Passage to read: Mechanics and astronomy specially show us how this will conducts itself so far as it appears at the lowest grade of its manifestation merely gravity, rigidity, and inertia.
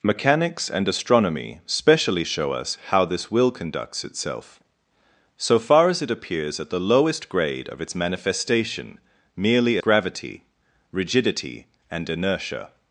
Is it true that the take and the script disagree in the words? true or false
false